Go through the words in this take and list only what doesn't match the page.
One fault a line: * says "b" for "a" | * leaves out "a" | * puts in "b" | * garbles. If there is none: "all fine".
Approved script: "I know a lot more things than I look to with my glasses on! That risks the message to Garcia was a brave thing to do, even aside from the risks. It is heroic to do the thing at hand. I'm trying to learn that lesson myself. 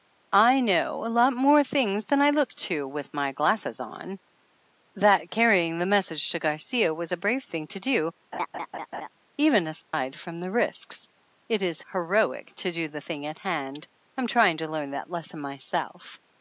* says "carrying" for "risks"